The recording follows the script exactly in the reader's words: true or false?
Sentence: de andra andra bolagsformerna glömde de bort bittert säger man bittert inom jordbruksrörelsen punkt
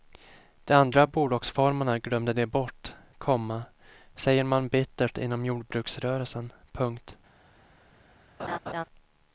false